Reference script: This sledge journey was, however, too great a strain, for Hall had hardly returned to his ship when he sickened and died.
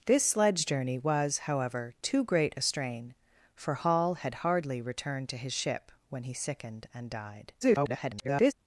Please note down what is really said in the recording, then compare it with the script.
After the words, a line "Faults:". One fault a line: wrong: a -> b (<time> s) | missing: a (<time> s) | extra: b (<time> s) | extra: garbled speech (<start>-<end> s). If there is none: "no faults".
This sledge journey was, however, too great a strain, for Hall had hardly returned to his ship when he sickened and died. [garbled]
Faults:
extra: garbled speech (7.6-8.5 s)